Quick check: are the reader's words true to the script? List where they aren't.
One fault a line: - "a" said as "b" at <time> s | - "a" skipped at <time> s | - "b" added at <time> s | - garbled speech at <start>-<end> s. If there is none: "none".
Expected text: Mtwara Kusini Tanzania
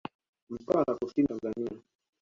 none